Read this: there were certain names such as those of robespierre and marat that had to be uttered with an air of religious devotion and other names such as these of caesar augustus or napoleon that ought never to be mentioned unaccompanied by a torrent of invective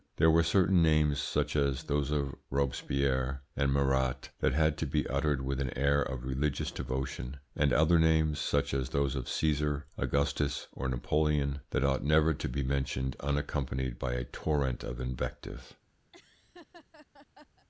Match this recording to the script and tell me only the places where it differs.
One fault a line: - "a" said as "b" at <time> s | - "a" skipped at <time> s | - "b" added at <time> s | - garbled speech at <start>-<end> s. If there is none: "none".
- "these" said as "those" at 8.9 s